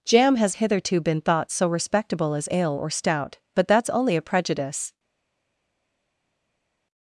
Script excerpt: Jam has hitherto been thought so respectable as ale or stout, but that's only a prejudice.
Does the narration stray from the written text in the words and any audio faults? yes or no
no